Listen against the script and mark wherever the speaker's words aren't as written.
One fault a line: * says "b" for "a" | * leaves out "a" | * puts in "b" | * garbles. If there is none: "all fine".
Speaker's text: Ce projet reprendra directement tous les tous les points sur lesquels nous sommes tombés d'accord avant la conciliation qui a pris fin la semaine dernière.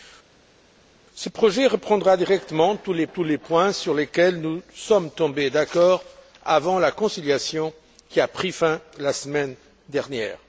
all fine